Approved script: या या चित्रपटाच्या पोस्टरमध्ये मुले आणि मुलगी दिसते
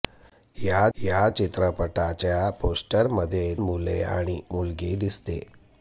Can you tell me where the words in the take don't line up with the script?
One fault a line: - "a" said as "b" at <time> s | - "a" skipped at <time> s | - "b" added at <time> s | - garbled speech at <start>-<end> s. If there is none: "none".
none